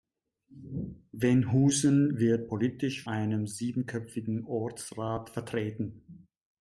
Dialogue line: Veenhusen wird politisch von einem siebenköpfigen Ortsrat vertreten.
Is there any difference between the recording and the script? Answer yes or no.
yes